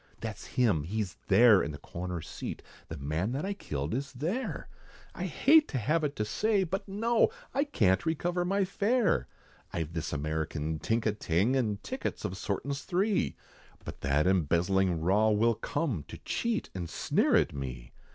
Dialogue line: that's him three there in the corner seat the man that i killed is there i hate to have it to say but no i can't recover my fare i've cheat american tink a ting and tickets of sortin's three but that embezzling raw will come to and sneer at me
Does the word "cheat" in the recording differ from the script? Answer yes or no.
yes